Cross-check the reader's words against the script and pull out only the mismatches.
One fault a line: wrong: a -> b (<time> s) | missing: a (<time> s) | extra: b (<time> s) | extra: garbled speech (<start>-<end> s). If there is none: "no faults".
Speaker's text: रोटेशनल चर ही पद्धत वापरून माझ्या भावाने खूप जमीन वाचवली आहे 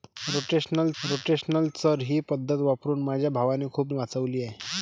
extra: रोटेशनल (1.0 s)
missing: जमीन (3.9 s)